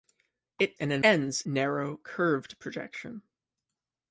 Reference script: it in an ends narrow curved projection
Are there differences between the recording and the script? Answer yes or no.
no